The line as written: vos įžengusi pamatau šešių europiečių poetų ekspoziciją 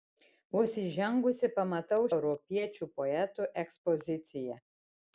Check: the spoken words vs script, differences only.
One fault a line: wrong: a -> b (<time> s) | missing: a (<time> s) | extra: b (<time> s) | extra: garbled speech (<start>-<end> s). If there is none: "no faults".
missing: šešių (2.1 s)